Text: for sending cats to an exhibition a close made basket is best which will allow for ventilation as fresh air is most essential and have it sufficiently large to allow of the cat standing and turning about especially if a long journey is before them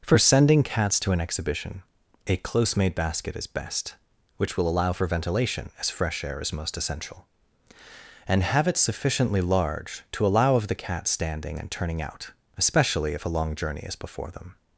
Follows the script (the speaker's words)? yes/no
no